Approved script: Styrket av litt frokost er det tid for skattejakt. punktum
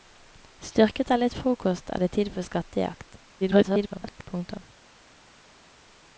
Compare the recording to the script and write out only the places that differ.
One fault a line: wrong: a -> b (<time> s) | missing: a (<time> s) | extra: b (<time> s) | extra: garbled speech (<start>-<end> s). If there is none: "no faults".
extra: garbled speech (3.4-4.3 s)